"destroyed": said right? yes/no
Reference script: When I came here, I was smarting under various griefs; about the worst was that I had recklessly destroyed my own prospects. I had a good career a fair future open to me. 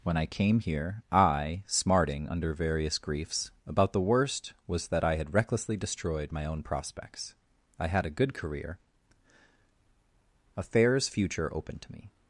yes